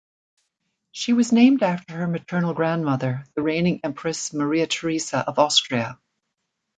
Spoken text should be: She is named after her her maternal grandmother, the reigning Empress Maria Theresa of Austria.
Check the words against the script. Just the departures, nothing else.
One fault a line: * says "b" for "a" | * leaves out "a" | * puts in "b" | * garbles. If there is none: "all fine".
* says "was" for "is"
* leaves out "her"